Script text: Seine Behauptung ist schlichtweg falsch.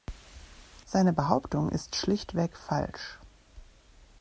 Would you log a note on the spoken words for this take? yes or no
no